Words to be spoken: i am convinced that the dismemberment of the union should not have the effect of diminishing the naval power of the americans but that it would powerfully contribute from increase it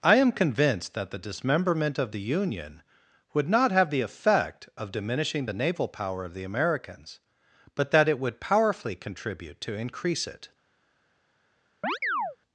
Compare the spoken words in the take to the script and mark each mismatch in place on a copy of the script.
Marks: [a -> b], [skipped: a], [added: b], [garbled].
i am convinced that the dismemberment of the union [should -> would] not have the effect of diminishing the naval power of the americans but that it would powerfully contribute [from -> to] increase it